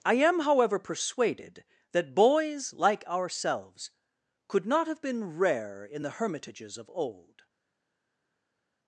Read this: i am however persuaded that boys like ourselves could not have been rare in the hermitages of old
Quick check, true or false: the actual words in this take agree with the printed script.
true